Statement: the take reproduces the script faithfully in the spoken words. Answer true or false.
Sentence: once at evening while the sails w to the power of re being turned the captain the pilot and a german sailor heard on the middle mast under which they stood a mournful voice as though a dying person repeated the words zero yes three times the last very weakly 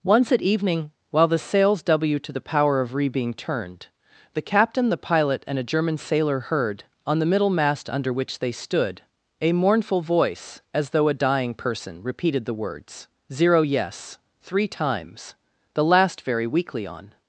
false